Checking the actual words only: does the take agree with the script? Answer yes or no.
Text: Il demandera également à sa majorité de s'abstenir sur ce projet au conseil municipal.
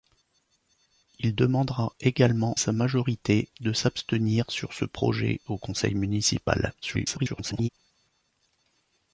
no